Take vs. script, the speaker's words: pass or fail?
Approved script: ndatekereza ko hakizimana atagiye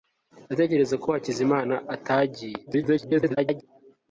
fail